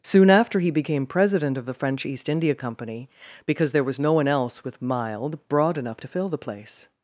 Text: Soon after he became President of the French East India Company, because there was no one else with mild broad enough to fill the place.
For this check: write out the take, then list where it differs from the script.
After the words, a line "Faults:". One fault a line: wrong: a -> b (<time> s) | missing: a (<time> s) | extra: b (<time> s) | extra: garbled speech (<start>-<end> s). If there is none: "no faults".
Soon after he became President of the French East India Company, because there was no one else with mild broad enough to fill the place.
Faults:
no faults